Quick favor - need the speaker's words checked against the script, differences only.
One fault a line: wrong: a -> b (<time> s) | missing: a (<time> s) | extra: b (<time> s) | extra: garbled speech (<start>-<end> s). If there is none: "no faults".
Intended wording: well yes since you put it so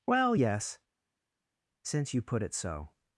no faults